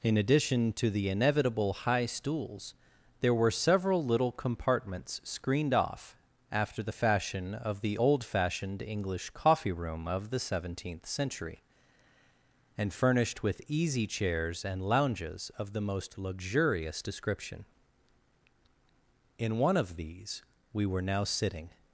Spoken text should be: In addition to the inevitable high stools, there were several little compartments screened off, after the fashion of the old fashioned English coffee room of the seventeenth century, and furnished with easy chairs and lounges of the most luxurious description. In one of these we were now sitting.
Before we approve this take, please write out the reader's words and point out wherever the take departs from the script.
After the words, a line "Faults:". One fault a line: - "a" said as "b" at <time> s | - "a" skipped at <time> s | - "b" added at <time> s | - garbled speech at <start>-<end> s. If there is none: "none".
In addition to the inevitable high stools, there were several little compartments screened off, after the fashion of the old fashioned English coffee room of the seventeenth century, and furnished with easy chairs and lounges of the most luxurious description. In one of these we were now sitting.
Faults:
none